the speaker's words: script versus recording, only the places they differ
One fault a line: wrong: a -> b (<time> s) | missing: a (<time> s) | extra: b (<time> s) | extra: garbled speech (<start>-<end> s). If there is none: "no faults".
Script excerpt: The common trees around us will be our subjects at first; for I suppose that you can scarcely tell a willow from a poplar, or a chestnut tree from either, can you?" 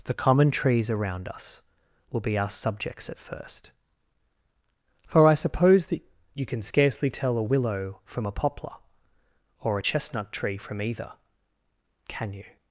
no faults